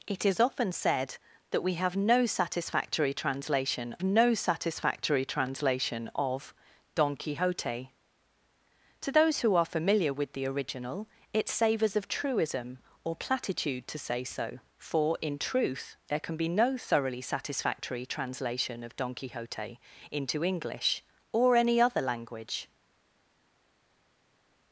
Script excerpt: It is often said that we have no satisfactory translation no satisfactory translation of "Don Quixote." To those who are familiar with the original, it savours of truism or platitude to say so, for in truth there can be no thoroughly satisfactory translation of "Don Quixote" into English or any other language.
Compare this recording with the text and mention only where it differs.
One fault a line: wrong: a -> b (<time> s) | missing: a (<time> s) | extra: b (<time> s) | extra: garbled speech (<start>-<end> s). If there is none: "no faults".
no faults